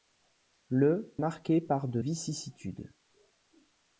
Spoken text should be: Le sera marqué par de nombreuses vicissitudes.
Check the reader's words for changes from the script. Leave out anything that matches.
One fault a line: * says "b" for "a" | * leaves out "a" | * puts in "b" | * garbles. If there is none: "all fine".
* leaves out "sera"
* leaves out "nombreuses"